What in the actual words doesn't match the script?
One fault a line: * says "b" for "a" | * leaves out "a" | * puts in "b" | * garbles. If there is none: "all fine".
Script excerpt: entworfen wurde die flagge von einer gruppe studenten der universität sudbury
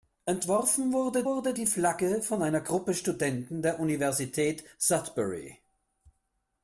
* puts in "wurde"